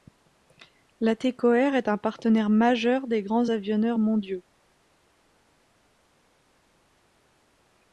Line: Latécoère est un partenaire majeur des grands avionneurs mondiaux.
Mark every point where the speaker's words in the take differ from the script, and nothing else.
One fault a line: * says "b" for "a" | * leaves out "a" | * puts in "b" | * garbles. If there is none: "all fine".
all fine